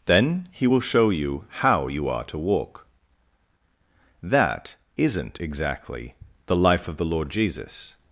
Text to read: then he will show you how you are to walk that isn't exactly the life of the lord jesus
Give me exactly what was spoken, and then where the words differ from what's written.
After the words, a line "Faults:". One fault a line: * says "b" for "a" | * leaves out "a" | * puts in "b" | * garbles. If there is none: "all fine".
then he will show you how you are to walk that isn't exactly the life of the lord jesus
Faults:
all fine